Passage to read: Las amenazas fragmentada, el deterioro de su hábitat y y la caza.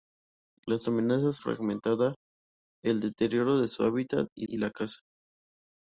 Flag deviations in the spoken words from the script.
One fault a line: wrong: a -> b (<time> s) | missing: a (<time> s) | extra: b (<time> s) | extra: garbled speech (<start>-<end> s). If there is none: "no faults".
no faults